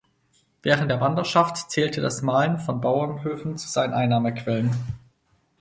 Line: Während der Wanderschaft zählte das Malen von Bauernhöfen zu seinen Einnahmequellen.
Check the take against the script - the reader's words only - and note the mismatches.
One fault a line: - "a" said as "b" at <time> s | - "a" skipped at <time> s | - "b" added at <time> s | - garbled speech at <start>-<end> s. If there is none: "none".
none